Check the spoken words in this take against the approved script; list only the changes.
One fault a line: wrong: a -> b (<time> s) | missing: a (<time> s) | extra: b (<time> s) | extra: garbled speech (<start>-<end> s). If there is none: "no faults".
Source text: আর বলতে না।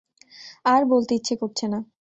extra: ইচ্ছে করছে (1.1 s)